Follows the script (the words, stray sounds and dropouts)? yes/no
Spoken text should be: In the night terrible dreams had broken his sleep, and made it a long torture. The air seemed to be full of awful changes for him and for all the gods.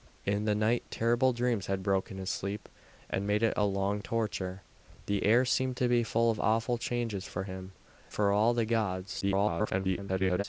no